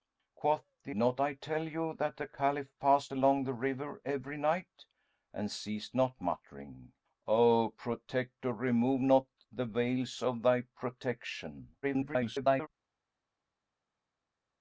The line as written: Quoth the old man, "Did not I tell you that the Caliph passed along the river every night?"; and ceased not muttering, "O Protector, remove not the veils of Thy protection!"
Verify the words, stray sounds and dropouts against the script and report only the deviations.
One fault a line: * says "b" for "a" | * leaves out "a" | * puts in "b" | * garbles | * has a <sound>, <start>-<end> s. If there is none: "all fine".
* leaves out "old man Did"
* garbles